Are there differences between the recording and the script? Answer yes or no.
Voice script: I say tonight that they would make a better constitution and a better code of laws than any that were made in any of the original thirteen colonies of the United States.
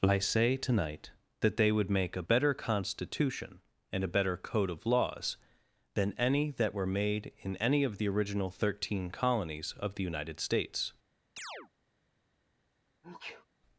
no